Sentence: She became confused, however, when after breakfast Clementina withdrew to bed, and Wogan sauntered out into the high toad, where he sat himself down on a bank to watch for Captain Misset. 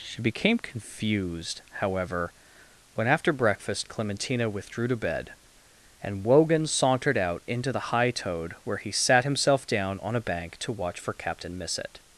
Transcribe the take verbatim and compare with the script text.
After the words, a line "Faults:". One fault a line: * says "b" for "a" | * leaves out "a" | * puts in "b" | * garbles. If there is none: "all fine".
She became confused, however, when after breakfast Clementina withdrew to bed, and Wogan sauntered out into the high toad, where he sat himself down on a bank to watch for Captain Misset.
Faults:
all fine